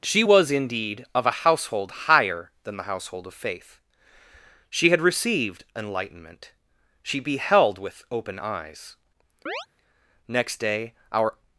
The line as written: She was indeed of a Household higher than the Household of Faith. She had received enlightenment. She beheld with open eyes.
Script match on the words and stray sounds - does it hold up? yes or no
no